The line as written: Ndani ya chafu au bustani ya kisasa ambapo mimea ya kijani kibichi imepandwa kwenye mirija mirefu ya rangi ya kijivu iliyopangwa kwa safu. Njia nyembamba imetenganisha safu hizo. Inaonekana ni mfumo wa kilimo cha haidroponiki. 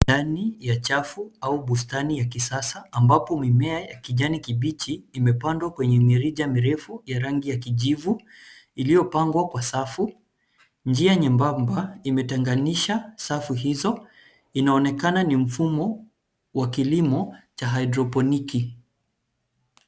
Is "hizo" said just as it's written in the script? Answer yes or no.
yes